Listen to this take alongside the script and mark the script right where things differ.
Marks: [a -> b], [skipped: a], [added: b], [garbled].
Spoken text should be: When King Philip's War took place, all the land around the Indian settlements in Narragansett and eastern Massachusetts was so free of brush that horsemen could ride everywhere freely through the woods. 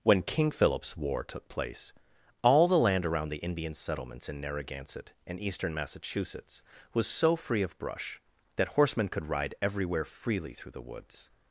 When King Philip's War took place, all the land around the Indian settlements in Narragansett and eastern Massachusetts was so free of brush that horsemen could ride everywhere freely through the woods.